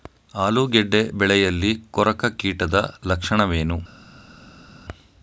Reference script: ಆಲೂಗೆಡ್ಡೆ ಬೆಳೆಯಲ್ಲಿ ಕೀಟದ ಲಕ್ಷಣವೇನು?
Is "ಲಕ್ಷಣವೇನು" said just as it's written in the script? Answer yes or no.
yes